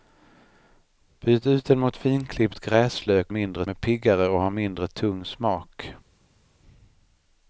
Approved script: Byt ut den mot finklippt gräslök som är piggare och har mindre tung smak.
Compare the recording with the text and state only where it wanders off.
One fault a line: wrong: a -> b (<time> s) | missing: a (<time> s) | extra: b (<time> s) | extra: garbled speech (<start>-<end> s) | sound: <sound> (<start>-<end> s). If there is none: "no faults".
wrong: som -> mindre (3.3 s)